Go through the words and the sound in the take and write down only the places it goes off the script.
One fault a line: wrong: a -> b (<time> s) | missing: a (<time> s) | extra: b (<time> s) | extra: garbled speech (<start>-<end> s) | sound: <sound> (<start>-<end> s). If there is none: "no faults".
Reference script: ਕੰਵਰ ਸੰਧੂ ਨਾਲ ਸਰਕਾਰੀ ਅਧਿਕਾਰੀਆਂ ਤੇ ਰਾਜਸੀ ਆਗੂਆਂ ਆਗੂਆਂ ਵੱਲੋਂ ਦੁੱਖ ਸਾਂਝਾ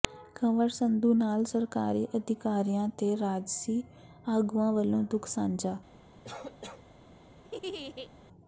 missing: ਆਗੂਆਂ (4.7 s)
sound: cough (6.2-6.8 s)
sound: laugh (7.4-8.1 s)